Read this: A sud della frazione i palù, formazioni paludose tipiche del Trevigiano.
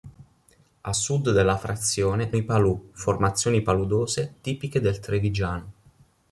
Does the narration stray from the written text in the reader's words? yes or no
no